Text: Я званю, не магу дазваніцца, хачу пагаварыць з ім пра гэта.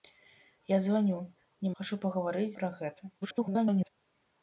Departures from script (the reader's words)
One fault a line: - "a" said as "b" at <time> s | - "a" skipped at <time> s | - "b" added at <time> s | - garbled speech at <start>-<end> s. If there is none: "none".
- "магу дазваніцца" skipped at 1.7 s
- "з ім" skipped at 2.5 s
- garbled speech at 3.2-3.9 s